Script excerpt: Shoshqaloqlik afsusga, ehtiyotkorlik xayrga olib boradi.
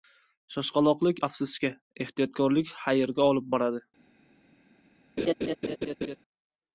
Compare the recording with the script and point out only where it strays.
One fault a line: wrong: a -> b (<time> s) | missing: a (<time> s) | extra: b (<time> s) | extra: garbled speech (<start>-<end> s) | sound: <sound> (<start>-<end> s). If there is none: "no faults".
sound: laugh (5.2-6.2 s)